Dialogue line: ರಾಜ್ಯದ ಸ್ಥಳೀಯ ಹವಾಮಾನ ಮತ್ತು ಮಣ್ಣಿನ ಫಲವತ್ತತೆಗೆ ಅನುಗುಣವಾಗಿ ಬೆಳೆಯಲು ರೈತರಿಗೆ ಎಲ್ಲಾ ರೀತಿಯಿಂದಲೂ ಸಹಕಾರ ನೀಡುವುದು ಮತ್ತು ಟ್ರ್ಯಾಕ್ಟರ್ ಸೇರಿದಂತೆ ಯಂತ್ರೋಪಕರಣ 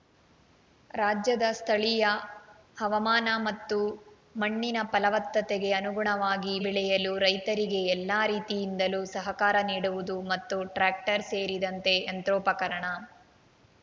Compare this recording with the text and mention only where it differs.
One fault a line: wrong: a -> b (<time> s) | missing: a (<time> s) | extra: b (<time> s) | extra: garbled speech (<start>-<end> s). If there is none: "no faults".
no faults